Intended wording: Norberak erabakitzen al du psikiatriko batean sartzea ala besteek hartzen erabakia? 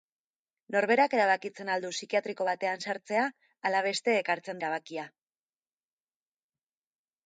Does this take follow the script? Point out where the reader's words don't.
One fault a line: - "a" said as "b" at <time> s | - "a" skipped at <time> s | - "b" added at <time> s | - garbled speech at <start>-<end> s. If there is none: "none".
none